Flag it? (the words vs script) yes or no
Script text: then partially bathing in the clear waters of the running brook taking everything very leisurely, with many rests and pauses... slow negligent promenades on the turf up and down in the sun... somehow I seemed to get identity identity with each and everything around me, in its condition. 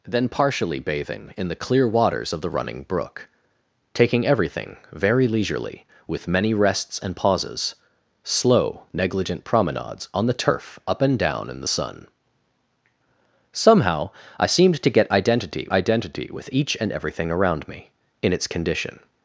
no